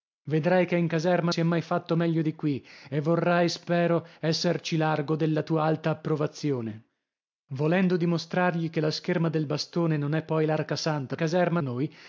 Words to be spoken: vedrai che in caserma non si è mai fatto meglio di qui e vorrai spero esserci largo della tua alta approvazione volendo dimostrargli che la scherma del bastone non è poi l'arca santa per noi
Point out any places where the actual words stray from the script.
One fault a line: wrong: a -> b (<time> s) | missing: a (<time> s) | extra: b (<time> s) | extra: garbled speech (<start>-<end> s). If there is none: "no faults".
missing: non (1.3 s)
wrong: per -> caserma (11.2 s)